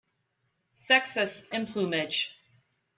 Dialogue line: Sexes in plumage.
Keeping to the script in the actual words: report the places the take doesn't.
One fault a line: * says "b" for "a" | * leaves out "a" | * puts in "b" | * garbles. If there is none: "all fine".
all fine